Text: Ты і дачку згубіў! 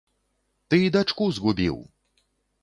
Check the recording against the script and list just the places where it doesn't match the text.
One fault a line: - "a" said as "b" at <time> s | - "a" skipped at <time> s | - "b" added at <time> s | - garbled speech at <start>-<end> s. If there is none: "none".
none